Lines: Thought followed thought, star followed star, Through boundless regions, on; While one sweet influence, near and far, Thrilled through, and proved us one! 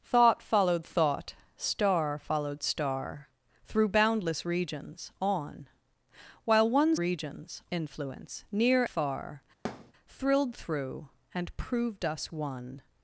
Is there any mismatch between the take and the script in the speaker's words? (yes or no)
yes